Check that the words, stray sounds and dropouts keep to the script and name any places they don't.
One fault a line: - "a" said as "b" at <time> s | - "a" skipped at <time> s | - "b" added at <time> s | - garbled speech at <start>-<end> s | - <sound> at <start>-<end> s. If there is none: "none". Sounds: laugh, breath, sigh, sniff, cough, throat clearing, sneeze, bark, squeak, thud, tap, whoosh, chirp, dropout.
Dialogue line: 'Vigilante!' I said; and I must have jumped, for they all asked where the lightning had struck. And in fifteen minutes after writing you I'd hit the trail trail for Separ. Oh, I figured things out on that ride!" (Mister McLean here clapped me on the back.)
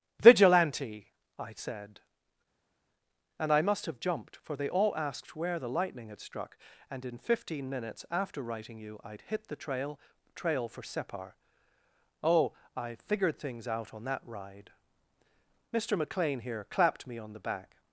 none